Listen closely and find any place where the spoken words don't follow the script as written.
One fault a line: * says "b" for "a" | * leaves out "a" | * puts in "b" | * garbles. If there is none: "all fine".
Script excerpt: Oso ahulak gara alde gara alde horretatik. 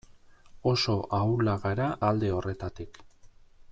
* leaves out "gara alde"